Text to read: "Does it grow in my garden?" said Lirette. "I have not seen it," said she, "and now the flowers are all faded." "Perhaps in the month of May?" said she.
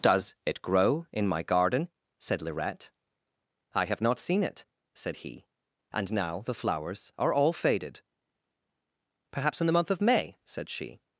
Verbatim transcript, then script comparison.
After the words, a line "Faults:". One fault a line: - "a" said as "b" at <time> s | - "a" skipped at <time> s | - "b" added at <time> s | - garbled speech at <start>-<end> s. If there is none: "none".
"Does it grow in my garden?" said Lirette. "I have not seen it," said he, "and now the flowers are all faded." "Perhaps in the month of May?" said she.
Faults:
- "she" said as "he" at 5.2 s